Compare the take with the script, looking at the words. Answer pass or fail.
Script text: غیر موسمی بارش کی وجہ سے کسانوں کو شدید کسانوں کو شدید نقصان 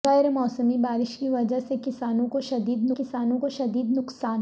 pass